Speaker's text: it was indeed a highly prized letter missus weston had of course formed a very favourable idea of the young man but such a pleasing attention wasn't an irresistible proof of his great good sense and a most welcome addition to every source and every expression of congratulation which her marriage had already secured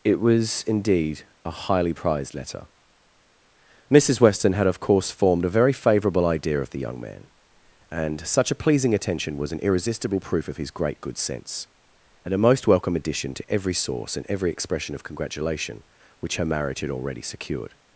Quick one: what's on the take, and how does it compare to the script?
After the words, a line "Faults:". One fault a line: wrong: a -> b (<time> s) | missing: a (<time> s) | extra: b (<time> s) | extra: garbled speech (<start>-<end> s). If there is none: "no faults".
it was indeed a highly prized letter missus weston had of course formed a very favourable idea of the young man and such a pleasing attention was an irresistible proof of his great good sense and a most welcome addition to every source and every expression of congratulation which her marriage had already secured
Faults:
wrong: but -> and (7.9 s)
wrong: wasn't -> was (9.4 s)